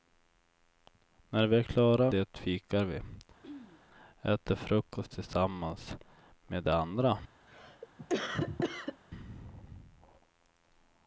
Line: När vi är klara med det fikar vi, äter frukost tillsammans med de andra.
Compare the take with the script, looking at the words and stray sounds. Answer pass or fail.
fail